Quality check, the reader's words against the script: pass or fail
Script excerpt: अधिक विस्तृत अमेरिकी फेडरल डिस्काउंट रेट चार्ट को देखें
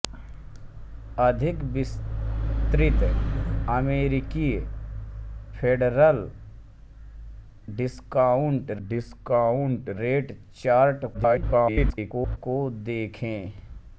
fail